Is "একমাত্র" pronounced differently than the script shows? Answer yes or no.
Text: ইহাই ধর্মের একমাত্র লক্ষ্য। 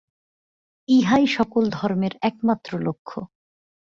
no